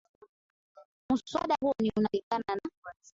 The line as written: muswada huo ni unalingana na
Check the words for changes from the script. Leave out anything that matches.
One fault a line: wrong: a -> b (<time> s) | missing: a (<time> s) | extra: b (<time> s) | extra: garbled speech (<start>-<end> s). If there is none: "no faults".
no faults